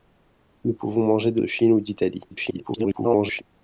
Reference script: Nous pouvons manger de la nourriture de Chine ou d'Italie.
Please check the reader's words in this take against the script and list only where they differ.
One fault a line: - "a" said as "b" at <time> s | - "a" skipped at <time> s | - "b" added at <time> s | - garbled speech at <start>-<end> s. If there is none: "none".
- "la nourriture" skipped at 1.4 s
- garbled speech at 2.3-3.4 s